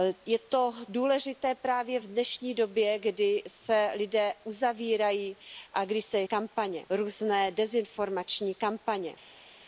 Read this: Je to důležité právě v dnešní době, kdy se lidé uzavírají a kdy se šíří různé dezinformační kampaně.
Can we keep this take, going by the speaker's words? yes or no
no